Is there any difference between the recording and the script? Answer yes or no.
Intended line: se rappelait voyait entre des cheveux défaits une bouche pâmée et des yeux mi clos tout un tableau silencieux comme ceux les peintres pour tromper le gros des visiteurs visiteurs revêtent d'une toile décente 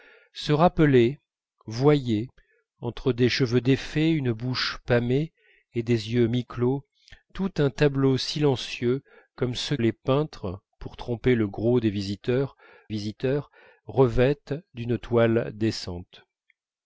no